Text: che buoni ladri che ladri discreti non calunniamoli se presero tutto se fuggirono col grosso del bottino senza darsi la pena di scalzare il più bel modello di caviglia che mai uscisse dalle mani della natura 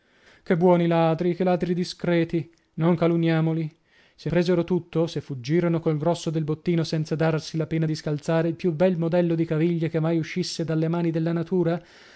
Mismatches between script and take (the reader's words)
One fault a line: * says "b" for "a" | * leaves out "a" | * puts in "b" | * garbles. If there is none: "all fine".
all fine